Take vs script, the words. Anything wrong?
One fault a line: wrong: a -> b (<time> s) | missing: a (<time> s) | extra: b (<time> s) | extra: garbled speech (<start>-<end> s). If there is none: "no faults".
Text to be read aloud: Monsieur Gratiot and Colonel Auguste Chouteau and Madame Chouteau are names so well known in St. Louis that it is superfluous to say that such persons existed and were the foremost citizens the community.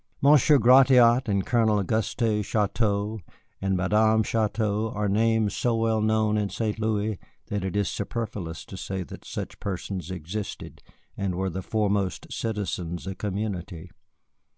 no faults